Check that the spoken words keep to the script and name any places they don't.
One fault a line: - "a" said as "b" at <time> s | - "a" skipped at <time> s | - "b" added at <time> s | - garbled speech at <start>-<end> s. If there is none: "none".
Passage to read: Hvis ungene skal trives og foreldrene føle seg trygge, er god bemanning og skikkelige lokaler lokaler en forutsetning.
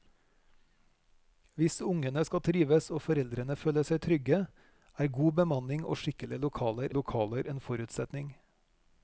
none